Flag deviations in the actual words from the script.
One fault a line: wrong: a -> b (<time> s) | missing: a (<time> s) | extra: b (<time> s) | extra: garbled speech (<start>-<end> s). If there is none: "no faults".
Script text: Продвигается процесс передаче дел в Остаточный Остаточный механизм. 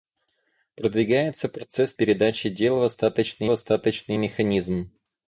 no faults